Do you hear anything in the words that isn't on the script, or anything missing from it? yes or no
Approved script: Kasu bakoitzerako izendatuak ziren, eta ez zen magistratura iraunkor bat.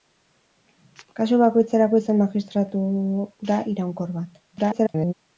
yes